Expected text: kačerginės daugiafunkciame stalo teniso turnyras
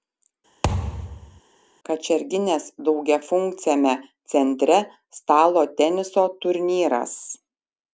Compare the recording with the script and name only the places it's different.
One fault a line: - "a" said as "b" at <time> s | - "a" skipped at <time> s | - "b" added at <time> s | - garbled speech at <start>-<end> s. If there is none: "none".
- "centre" added at 4.4 s